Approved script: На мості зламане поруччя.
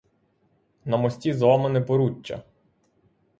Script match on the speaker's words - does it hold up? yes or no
yes